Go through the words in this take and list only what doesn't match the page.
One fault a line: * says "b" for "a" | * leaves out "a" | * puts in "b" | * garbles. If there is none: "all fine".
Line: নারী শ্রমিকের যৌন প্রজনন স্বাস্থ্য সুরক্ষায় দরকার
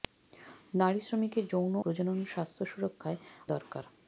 all fine